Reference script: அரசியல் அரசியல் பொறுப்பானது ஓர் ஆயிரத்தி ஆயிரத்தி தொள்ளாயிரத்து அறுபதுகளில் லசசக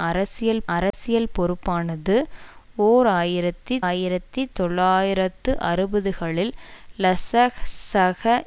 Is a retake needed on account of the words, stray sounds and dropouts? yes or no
yes